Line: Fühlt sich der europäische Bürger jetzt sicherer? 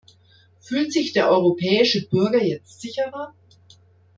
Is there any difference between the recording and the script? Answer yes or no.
no